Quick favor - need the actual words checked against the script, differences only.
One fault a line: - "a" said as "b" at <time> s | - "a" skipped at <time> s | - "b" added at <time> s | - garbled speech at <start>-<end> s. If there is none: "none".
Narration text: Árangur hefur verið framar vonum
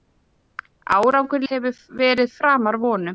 none